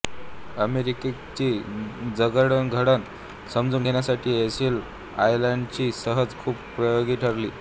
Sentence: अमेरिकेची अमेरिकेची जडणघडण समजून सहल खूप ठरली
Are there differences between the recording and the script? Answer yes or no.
yes